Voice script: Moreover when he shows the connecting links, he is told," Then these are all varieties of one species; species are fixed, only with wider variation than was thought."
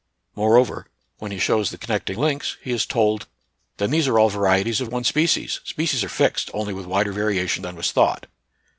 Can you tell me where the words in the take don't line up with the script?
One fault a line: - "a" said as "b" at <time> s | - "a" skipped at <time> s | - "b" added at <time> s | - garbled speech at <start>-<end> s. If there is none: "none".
none